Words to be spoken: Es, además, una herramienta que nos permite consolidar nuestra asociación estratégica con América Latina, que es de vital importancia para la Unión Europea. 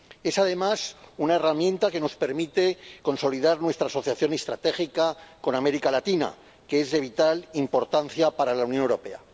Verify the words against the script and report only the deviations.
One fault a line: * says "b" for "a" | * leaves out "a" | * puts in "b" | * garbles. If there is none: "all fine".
all fine